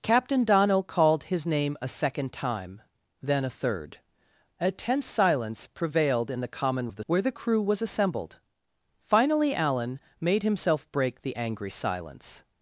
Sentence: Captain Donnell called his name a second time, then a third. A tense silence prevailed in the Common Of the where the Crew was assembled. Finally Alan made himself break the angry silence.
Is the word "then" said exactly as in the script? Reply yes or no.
yes